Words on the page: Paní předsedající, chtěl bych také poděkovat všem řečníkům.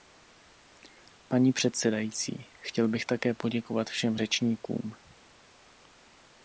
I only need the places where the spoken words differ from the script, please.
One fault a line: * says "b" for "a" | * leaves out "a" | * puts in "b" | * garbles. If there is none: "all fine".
all fine